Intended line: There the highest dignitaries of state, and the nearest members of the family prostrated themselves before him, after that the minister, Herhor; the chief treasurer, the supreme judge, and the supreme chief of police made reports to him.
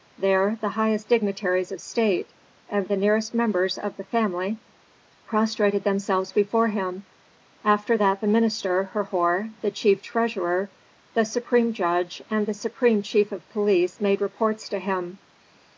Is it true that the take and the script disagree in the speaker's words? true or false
false